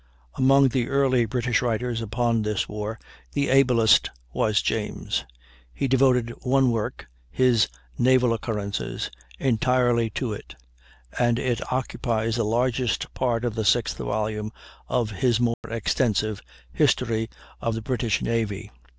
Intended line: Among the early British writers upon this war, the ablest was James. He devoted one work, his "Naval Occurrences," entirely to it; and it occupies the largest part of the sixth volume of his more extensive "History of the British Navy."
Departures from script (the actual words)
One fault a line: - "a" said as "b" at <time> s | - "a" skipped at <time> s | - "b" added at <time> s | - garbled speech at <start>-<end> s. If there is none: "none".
none